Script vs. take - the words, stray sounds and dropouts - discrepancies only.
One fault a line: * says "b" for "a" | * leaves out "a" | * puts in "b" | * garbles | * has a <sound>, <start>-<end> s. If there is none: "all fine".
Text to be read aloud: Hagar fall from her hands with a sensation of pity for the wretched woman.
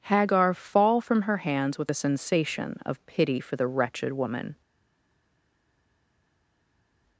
all fine